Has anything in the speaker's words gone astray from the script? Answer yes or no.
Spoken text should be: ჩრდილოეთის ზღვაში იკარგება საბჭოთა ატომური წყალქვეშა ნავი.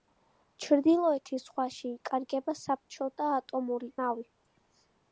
yes